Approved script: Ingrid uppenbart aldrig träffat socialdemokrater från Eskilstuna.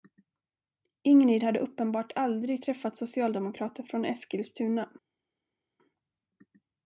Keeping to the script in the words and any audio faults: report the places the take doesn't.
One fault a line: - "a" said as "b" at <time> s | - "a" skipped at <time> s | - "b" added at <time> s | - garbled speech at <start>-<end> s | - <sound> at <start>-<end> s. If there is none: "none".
- "hade" added at 1.4 s